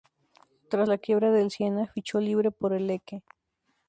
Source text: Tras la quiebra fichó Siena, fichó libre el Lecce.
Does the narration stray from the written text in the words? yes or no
yes